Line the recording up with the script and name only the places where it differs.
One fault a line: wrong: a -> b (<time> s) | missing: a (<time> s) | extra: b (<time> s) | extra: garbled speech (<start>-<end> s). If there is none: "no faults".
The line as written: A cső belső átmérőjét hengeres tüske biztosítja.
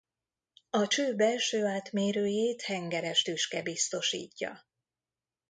no faults